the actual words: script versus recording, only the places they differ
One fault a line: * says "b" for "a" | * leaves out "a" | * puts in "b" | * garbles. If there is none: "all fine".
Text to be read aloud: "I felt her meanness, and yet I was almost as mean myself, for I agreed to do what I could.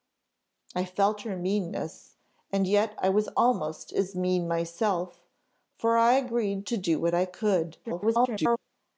* garbles